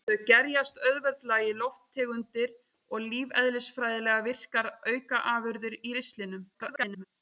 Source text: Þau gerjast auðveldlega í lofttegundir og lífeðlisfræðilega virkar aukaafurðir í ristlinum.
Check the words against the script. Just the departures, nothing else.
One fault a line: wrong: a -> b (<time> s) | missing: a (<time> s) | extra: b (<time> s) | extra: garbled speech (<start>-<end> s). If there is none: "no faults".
extra: garbled speech (6.5-7.0 s)